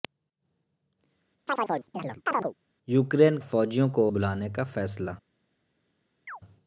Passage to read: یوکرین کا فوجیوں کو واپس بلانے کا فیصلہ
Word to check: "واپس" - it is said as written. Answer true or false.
false